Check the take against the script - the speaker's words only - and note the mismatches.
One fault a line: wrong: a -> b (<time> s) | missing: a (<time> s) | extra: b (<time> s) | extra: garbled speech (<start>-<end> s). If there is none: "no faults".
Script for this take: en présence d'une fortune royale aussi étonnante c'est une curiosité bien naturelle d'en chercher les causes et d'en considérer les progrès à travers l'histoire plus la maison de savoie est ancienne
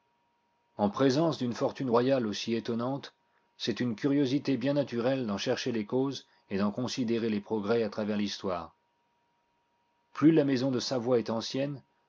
no faults